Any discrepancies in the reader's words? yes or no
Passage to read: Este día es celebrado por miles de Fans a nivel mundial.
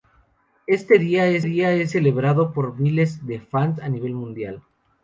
yes